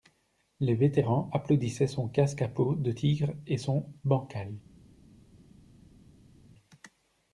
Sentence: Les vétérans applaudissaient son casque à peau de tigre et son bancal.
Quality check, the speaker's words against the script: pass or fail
pass